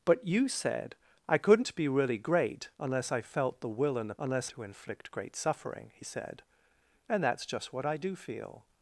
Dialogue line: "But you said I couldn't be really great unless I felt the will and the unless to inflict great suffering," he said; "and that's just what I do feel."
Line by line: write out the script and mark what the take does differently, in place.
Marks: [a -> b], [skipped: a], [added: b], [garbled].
"But you said I couldn't be really great unless I felt the will and the unless to inflict great suffering," he said; "and that's just what I do feel."